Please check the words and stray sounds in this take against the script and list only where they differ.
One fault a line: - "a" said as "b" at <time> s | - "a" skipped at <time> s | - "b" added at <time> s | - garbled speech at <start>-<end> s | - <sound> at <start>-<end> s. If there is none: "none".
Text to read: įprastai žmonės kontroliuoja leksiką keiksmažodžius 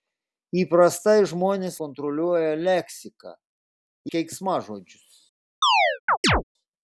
- chirp at 5.6-6.4 s